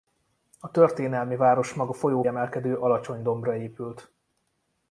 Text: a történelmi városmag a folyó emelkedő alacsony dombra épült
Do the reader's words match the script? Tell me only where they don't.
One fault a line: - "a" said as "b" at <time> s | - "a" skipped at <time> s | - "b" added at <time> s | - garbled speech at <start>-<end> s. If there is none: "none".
none